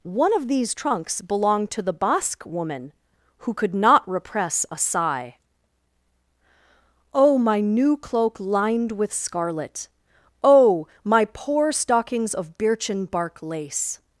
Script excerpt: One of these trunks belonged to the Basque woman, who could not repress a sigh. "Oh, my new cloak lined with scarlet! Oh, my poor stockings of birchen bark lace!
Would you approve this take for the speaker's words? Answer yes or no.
yes